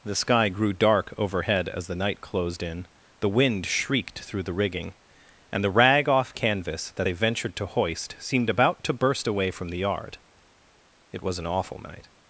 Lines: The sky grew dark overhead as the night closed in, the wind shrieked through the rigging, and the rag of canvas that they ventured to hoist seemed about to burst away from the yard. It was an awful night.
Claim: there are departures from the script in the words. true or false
true